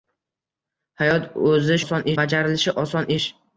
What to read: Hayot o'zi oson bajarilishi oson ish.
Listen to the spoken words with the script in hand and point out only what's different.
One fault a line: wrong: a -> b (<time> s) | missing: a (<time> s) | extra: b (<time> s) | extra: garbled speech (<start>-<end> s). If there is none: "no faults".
no faults